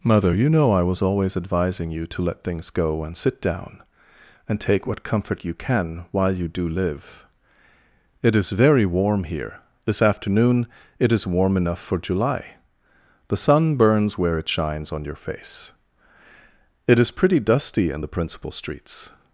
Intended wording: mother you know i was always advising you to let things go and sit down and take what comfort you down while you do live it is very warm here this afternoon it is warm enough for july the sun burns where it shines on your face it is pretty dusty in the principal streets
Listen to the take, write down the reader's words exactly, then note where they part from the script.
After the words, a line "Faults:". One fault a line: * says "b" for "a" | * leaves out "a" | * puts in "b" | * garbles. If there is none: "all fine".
mother you know i was always advising you to let things go and sit down and take what comfort you can while you do live it is very warm here this afternoon it is warm enough for july the sun burns where it shines on your face it is pretty dusty in the principal streets
Faults:
* says "can" for "down"